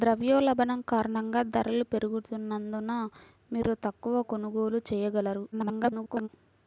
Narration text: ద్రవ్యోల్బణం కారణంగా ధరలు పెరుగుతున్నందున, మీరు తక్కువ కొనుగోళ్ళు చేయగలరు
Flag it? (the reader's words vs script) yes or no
yes